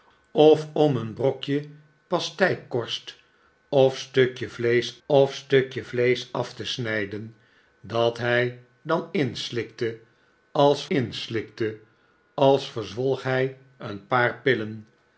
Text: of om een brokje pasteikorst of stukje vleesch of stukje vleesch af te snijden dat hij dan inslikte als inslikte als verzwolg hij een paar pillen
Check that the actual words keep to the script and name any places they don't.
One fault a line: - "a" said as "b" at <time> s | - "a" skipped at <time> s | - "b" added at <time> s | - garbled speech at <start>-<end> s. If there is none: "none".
none